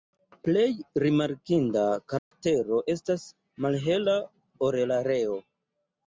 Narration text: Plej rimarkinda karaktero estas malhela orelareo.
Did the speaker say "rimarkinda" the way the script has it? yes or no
yes